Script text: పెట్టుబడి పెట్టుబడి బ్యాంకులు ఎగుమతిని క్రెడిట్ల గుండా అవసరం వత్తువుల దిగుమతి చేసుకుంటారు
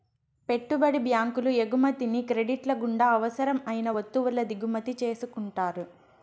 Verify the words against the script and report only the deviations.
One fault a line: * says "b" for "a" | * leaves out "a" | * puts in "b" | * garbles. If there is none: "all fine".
* leaves out "పెట్టుబడి"
* puts in "అయిన"